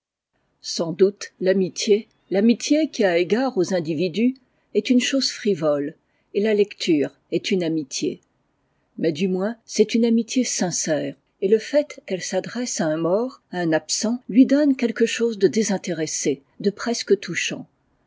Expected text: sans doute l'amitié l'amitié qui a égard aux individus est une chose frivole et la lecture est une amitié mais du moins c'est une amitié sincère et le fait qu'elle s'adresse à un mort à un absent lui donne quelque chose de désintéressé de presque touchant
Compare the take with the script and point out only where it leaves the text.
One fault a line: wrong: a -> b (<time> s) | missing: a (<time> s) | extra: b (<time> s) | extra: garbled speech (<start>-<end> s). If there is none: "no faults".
no faults